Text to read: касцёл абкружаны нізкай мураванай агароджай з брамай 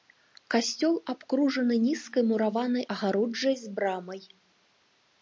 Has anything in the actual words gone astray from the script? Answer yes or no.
no